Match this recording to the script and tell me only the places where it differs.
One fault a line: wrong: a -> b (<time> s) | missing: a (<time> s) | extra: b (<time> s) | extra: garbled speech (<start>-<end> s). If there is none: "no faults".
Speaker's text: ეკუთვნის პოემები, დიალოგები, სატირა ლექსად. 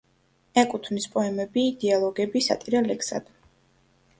no faults